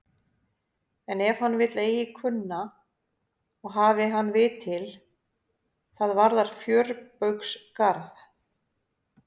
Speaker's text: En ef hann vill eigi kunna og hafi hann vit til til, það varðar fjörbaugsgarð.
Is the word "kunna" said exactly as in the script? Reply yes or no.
yes